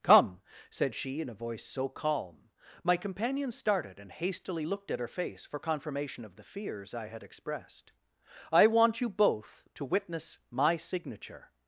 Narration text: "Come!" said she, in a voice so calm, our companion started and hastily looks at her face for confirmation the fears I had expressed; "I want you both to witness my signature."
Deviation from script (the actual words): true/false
true